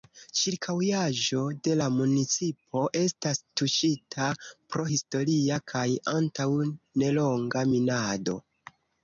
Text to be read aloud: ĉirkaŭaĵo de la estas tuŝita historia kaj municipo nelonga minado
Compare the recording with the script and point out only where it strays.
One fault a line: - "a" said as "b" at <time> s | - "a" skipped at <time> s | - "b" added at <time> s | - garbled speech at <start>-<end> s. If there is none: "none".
- "municipo" added at 2.0 s
- "pro" added at 4.5 s
- "municipo" said as "antaŭ" at 6.2 s